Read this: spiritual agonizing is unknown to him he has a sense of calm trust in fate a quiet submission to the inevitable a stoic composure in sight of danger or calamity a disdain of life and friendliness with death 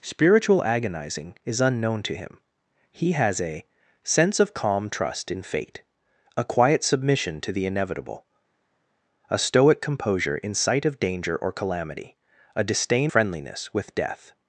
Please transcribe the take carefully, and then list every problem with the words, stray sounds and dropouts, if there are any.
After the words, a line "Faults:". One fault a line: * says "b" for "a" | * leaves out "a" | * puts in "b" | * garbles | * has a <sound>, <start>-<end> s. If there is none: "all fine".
spiritual agonizing is unknown to him he has a sense of calm trust in fate a quiet submission to the inevitable a stoic composure in sight of danger or calamity a disdain friendliness with death
Faults:
* leaves out "of life and"